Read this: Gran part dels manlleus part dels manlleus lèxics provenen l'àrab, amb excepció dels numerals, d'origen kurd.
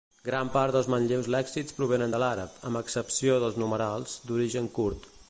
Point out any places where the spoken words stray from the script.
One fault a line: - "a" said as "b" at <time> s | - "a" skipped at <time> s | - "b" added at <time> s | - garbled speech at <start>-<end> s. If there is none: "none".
- "part dels manlleus" skipped at 1.3 s
- "de" added at 2.1 s